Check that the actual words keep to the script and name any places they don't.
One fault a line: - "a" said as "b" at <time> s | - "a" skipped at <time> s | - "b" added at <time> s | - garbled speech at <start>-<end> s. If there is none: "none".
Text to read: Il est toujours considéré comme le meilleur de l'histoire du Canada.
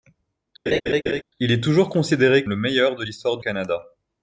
- "comme" skipped at 2.4 s
- "du" skipped at 3.4 s